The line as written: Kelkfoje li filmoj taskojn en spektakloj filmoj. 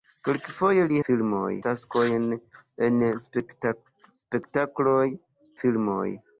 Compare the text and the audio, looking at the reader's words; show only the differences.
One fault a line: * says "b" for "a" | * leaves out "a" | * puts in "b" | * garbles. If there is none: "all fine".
all fine